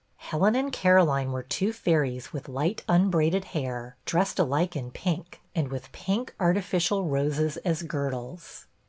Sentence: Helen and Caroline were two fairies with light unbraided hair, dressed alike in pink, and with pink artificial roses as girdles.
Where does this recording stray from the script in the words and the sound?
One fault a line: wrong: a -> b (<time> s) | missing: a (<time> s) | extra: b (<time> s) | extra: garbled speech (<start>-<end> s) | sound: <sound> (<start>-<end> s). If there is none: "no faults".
no faults